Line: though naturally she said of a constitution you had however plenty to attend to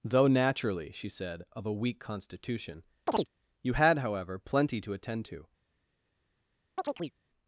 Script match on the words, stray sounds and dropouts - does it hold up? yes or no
no